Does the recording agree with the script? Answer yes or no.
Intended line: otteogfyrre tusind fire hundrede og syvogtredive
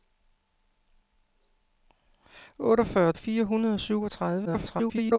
no